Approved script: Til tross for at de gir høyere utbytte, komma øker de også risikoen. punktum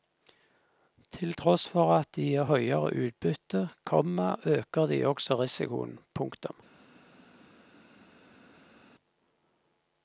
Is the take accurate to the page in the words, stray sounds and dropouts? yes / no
yes